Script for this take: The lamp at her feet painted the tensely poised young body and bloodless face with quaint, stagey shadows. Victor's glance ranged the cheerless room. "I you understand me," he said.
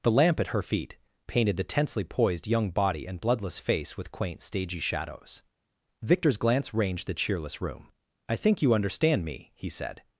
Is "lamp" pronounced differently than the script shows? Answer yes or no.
no